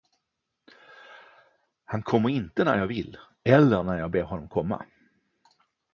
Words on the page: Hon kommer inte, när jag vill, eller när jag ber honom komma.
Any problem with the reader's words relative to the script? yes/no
yes